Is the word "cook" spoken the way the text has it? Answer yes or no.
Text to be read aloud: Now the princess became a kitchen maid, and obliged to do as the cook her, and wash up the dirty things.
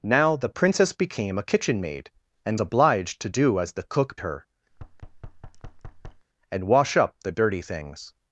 yes